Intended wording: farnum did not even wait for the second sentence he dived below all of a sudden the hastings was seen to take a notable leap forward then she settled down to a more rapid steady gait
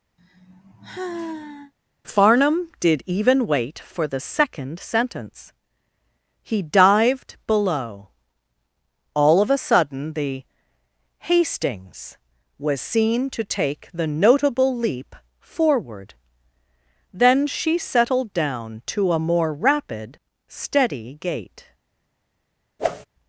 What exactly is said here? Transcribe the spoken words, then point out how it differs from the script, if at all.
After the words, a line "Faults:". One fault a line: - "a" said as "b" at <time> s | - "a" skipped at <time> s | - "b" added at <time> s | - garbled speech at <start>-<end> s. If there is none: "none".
farnum did even wait for the second sentence he dived below all of a sudden the hastings was seen to take the notable leap forward then she settled down to a more rapid steady gait
Faults:
- "not" skipped at 3.0 s
- "a" said as "the" at 13.9 s